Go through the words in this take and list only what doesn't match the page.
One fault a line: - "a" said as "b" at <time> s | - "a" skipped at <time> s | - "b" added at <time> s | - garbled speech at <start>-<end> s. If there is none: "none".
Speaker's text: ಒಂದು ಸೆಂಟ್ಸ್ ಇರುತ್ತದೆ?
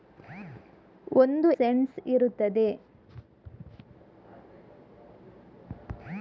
none